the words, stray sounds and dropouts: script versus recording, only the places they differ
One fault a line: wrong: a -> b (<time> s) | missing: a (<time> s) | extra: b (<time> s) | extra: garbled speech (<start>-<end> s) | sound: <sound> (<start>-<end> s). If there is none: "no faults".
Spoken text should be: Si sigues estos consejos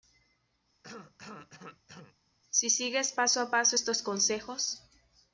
sound: cough (0.8-2.2 s)
extra: paso a paso (3.1 s)